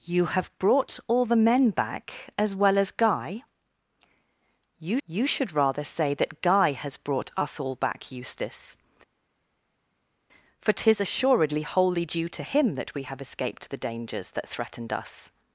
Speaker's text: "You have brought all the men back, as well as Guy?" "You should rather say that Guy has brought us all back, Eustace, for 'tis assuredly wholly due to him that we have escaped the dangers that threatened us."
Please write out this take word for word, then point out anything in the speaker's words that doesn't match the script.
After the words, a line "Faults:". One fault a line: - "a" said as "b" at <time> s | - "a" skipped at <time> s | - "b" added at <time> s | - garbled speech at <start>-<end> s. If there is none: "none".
"You have brought all the men back, as well as Guy?" "You you should rather say that Guy has brought us all back, Eustace, for 'tis assuredly wholly due to him that we have escaped the dangers that threatened us."
Faults:
- "you" added at 5.1 s